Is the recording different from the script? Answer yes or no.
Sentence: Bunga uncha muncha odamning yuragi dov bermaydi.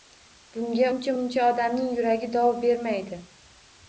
no